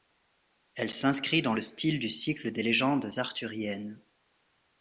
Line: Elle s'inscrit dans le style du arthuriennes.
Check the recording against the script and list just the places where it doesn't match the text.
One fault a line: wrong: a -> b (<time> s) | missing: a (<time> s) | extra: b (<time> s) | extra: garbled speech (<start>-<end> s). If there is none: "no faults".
extra: cycle des légendes (2.1 s)